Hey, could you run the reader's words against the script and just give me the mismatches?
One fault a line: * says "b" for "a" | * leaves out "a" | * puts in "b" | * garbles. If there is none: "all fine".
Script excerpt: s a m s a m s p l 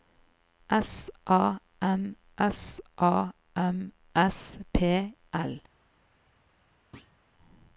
all fine